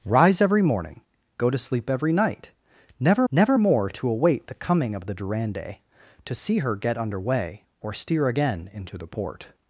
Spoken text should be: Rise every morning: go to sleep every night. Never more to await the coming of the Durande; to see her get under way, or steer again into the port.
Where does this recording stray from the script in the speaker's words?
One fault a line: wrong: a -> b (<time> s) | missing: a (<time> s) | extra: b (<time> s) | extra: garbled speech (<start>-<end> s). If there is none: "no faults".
extra: never (3.3 s)